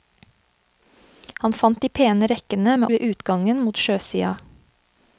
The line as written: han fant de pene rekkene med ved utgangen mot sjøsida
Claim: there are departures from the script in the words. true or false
false